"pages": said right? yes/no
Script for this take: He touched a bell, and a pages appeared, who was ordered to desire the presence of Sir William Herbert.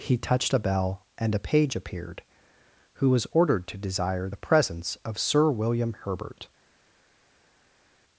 no